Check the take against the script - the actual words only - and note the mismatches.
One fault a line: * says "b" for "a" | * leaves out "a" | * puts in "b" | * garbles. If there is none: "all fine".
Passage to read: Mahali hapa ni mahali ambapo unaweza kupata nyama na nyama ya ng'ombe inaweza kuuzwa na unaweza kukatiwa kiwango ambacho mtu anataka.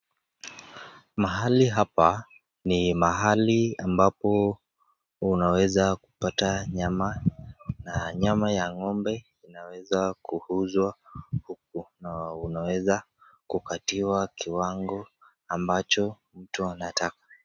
* puts in "huku"